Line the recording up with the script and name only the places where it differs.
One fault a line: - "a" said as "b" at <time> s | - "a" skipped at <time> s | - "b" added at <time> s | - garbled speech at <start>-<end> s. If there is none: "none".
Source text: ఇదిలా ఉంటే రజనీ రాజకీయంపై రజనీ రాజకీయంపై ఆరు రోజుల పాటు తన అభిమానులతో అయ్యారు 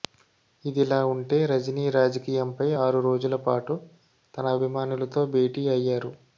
- "రజనీ రాజకీయంపై" skipped at 2.7 s
- "భేటీ" added at 5.3 s